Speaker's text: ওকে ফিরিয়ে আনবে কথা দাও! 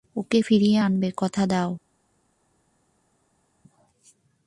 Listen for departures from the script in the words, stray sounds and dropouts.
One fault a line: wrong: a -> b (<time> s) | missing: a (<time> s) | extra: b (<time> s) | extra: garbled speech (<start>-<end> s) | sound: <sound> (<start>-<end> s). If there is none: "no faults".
no faults